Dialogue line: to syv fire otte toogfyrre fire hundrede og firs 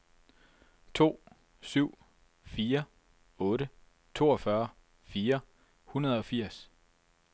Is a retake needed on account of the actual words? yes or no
no